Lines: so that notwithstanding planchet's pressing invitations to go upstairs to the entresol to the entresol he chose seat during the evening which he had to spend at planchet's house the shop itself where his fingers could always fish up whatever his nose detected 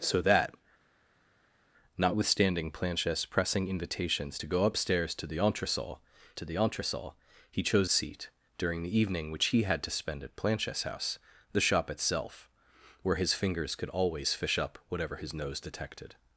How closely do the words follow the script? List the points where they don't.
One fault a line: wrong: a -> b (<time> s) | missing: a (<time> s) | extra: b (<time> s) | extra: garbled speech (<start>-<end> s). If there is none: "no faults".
no faults